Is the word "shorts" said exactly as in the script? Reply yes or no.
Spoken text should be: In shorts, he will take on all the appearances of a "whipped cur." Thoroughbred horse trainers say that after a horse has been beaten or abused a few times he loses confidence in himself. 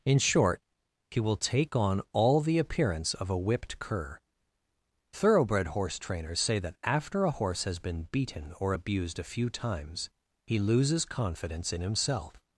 no